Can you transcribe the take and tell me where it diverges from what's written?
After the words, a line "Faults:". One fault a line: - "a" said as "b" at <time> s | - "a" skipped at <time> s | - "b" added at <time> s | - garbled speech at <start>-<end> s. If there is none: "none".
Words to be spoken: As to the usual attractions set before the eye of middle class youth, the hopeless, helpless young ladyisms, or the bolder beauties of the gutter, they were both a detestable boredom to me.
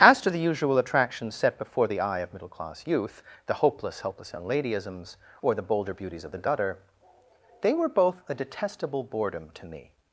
As to the usual attractions set before the eye of middle class youth, the hopeless, helpless young ladyisms, or the bolder beauties of the gutter, they were both a detestable boredom to me.
Faults:
none